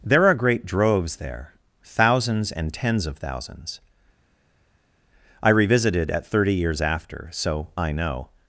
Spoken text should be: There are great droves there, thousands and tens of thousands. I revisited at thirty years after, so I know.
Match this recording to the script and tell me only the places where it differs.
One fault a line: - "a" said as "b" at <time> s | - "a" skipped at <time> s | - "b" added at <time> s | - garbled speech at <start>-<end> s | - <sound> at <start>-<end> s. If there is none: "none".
none